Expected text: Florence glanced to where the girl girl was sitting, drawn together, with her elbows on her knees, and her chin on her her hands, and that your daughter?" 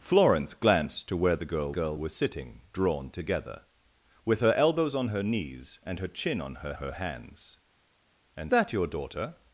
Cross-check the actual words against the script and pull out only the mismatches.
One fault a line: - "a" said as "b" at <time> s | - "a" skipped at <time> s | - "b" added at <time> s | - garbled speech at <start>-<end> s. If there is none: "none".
none